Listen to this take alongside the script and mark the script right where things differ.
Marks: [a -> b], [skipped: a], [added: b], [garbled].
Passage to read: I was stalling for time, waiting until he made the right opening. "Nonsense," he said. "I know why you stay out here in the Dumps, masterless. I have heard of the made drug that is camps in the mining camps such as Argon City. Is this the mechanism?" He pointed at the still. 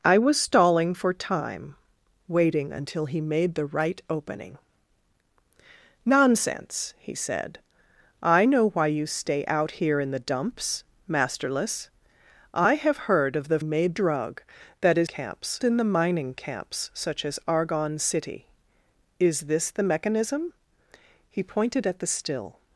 I was stalling for time, waiting until he made the right opening. "Nonsense," he said. "I know why you stay out here in the Dumps, masterless. I have heard of the made drug that is camps in the mining camps such as Argon City. Is this the mechanism?" He pointed at the still.